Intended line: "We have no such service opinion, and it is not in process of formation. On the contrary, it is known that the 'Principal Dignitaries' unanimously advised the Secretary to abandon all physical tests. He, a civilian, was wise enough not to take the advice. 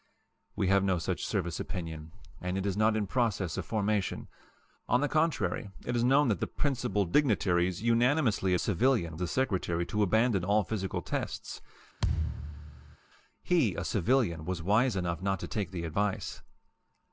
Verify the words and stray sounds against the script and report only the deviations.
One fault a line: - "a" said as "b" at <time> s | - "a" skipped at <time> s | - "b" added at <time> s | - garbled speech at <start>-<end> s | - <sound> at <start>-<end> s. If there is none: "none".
- "advised" said as "civilian" at 8.6 s
- thud at 12.0-13.0 s